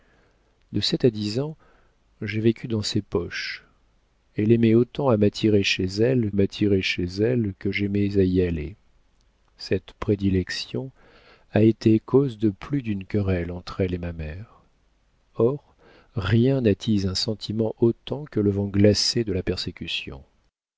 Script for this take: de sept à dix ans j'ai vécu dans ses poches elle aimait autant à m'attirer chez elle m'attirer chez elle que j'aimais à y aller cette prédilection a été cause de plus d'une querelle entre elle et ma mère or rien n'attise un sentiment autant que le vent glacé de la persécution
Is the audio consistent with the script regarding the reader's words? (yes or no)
yes